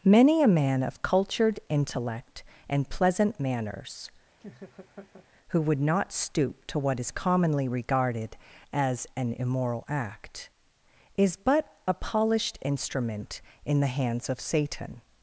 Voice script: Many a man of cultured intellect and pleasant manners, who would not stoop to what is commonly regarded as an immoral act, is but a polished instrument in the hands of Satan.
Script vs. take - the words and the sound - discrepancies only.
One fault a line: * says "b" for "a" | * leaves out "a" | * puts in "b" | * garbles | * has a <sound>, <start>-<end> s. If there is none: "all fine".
* has a laugh, 4.4-5.3 s